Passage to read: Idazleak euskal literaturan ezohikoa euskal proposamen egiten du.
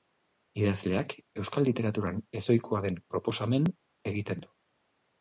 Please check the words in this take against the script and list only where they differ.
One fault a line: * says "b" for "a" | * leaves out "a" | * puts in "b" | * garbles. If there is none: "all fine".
* says "den" for "euskal"